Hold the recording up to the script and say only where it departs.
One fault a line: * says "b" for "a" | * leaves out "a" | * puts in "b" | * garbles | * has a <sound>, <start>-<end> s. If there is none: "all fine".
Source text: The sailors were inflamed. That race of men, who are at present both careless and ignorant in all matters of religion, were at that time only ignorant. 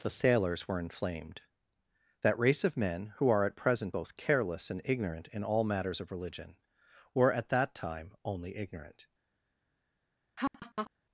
* has a laugh, 10.4-10.9 s